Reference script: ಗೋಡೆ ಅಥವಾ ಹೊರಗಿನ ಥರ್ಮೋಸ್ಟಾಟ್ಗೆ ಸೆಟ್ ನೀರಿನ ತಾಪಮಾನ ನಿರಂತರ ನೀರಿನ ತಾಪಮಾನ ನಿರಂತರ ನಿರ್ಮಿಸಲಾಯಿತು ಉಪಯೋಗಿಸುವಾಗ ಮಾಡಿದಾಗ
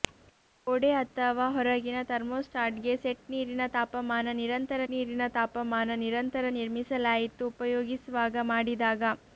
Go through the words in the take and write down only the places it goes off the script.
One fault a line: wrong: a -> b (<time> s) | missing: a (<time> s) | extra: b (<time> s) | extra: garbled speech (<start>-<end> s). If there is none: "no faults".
no faults